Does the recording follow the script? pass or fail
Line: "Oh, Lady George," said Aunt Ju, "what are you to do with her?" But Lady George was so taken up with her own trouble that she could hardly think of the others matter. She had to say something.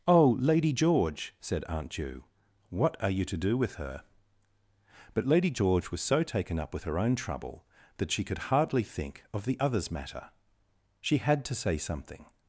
pass